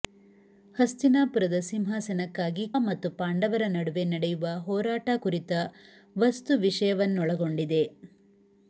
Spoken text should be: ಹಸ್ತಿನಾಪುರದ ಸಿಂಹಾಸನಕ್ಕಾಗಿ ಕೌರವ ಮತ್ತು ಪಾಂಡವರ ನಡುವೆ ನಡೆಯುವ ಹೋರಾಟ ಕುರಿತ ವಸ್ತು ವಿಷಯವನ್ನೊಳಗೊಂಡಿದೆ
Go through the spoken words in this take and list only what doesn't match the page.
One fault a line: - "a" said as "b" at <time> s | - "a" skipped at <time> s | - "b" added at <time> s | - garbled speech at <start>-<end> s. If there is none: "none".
- "ಕೌರವ" skipped at 2.6 s